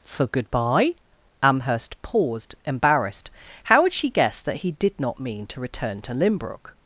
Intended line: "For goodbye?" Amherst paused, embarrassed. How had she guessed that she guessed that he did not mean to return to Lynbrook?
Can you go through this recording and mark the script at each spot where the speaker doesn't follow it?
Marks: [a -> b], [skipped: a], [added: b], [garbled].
"For goodbye?" Amherst paused, embarrassed. How had she guessed that [skipped: she guessed that] he did not mean to return to Lynbrook?